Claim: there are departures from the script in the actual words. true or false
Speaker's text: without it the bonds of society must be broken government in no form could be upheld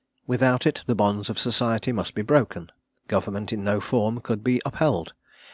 false